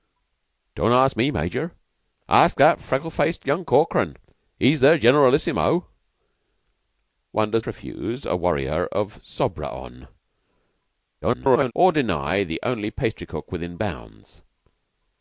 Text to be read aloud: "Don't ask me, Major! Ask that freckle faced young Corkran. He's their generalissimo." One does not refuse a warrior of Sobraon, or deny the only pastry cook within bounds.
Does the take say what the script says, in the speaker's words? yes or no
no